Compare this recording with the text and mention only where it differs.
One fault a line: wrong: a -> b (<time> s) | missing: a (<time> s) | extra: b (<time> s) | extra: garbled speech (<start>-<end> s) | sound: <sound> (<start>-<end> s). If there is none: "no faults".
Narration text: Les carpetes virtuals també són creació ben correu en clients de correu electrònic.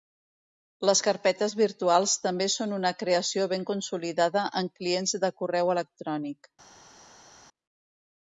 extra: una (2.8 s)
wrong: correu -> consolidada (3.7 s)